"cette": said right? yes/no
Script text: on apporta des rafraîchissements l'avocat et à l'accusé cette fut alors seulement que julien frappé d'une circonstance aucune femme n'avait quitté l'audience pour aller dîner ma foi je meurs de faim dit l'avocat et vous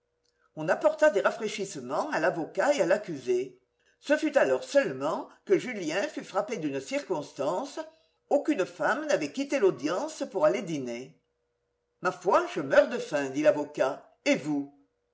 no